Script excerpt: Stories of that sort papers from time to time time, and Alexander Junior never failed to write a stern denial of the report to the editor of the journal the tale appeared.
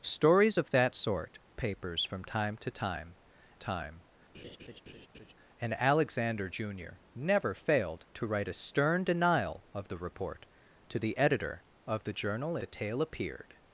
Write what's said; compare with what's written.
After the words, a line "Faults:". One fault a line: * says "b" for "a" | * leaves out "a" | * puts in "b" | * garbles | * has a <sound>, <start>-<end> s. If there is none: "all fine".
Stories of that sort papers from time to time time, and Alexander Junior never failed to write a stern denial of the report to the editor of the journal the tale appeared.
Faults:
* has a laugh, 4.3-5.3 s